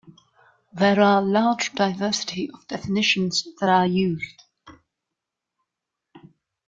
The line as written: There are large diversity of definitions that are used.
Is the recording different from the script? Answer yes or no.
no